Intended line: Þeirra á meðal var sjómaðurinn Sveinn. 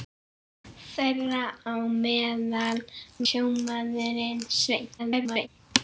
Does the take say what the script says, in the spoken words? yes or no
no